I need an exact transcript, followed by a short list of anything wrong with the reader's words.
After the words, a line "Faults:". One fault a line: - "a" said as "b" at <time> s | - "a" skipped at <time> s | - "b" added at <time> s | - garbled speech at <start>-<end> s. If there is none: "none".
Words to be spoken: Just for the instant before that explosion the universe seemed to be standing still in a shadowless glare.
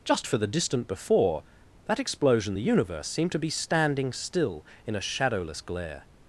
Just for the distant before that explosion the universe seemed to be standing still in a shadowless glare.
Faults:
- "instant" said as "distant" at 0.5 s